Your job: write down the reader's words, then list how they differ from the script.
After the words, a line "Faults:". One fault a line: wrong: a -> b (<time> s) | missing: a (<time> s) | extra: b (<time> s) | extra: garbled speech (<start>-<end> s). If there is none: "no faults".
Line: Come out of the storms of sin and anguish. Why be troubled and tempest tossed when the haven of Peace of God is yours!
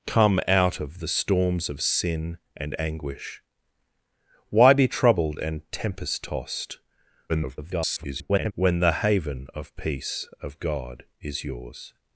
Come out of the storms of sin and anguish. Why be troubled and tempest tossed [garbled] when the haven of Peace of God is yours!
Faults:
extra: garbled speech (7.3-8.5 s)